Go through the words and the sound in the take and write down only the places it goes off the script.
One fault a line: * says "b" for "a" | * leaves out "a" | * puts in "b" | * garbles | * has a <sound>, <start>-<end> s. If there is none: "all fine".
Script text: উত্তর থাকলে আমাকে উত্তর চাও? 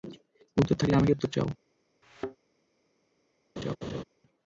* has a thud, 2.0-2.4 s
* has a laugh, 3.6-4.0 s